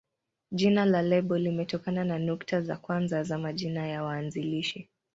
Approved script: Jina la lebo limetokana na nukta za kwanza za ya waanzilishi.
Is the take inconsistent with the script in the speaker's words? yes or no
yes